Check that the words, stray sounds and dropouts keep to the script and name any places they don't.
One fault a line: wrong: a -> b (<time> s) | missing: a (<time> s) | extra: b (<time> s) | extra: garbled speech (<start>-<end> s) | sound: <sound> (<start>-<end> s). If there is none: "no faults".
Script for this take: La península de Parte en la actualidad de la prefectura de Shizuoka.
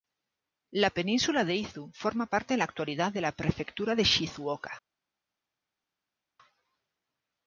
extra: Izu forma (1.6 s)